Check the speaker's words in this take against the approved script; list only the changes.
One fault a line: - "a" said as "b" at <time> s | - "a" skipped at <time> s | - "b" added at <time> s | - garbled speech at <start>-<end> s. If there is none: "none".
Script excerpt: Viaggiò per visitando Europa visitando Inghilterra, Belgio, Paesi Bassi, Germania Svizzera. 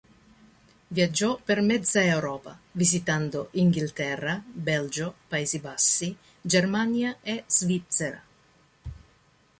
- "visitando" said as "mezza" at 1.6 s
- "e" added at 7.2 s